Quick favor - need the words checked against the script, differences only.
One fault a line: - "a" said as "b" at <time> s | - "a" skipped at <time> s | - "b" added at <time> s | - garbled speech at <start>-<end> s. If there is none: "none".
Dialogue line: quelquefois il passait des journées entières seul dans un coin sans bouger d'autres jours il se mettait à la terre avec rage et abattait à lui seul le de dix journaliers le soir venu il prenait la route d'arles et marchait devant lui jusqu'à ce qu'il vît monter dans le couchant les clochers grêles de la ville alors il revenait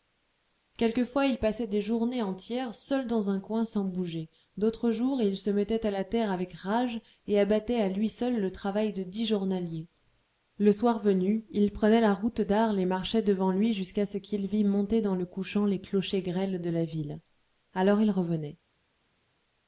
- "travail" added at 8.5 s